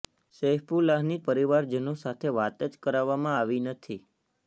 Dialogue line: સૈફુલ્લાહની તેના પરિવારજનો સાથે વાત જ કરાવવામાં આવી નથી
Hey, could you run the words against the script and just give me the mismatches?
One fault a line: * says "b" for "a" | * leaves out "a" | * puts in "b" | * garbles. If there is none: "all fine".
* leaves out "તેના"